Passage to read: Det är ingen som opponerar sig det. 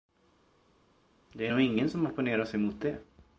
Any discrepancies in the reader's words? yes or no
yes